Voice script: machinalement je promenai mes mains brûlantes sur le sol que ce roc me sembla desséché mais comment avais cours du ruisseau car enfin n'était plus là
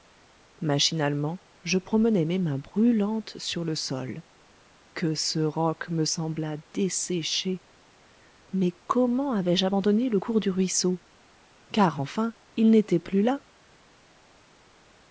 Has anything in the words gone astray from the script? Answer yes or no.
yes